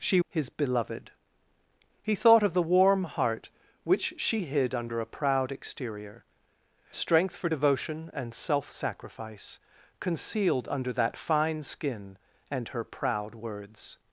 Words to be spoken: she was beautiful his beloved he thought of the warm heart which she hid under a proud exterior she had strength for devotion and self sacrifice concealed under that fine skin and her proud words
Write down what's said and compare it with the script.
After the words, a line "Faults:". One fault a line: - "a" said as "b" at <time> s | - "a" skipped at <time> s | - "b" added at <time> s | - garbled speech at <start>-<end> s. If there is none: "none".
she his beloved he thought of the warm heart which she hid under a proud exterior strength for devotion and self sacrifice concealed under that fine skin and her proud words
Faults:
- "was beautiful" skipped at 0.2 s
- "she had" skipped at 6.2 s